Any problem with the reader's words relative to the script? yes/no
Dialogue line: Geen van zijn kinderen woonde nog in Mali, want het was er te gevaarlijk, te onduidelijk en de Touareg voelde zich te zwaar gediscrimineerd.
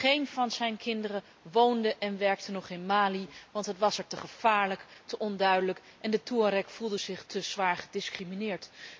yes